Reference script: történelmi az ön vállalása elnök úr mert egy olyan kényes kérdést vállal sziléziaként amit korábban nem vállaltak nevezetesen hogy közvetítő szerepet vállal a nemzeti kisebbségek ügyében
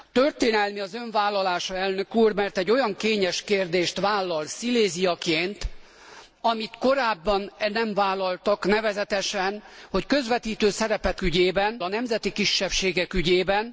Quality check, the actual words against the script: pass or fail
fail